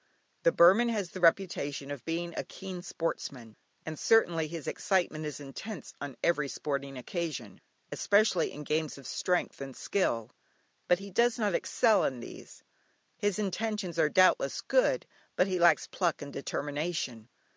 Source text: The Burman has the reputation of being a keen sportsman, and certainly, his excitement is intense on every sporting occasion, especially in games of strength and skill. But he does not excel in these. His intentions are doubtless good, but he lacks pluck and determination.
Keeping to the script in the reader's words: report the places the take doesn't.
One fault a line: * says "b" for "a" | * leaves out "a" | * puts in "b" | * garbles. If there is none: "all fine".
all fine